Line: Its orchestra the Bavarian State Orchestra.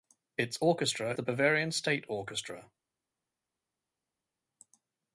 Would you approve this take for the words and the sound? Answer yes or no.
yes